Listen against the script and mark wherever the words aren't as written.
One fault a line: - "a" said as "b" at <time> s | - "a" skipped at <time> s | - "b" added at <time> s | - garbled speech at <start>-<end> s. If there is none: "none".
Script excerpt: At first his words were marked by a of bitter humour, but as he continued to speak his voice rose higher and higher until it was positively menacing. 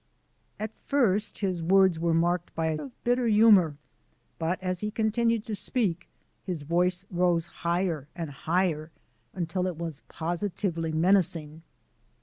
none